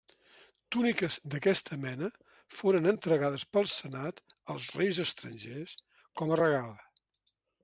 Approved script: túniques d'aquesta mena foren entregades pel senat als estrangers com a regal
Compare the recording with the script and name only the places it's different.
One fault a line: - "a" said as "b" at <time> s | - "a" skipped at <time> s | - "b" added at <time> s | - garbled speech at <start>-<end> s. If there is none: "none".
- "reis" added at 4.8 s